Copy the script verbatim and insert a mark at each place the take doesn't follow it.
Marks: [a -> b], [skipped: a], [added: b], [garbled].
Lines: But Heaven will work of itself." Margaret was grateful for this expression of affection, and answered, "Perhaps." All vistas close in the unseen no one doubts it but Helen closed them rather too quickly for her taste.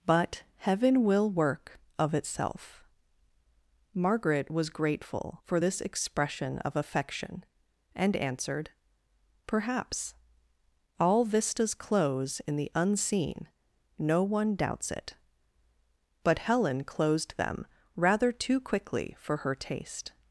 But Heaven will work of itself." Margaret was grateful for this expression of affection, and answered, "Perhaps." All vistas close in the unseen no one doubts it but Helen closed them rather too quickly for her taste.